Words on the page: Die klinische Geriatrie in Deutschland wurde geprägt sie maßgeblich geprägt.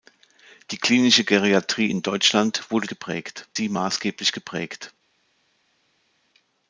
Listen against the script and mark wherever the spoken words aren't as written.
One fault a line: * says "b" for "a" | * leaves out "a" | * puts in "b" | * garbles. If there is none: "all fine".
all fine